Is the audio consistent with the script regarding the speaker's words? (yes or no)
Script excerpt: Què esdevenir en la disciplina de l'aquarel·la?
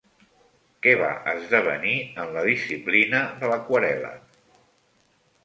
no